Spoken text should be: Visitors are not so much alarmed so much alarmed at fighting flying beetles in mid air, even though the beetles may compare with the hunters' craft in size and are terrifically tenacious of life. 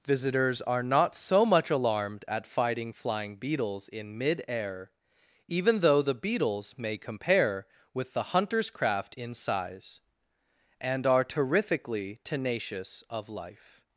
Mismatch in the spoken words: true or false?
true